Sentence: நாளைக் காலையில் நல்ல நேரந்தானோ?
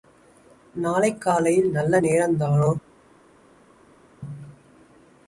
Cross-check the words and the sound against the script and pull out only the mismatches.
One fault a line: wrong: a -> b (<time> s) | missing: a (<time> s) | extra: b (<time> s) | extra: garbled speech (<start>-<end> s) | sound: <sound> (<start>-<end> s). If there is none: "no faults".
no faults